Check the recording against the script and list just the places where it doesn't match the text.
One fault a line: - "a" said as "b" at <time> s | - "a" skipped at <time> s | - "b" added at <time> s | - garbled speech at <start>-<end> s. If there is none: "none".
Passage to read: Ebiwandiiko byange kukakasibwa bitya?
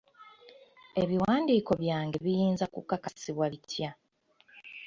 - "biyinza" added at 2.2 s